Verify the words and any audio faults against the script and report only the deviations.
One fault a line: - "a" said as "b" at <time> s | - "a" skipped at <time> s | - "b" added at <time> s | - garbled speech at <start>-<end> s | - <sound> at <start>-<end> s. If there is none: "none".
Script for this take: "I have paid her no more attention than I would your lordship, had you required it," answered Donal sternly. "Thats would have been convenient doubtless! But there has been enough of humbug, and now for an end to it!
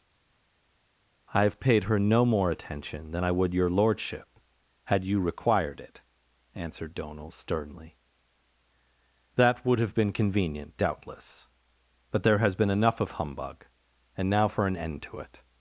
- "Thats" said as "That" at 9.3 s